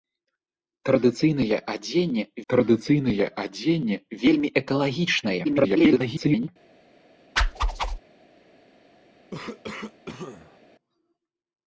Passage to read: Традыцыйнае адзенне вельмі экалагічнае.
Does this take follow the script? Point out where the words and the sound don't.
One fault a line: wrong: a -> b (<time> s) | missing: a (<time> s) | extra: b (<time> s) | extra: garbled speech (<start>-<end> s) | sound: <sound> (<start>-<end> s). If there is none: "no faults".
extra: традыцыйнае адзенне (2.5 s)
extra: garbled speech (5.4-6.5 s)
sound: whoosh (7.4-8.0 s)
sound: cough (9.3-10.6 s)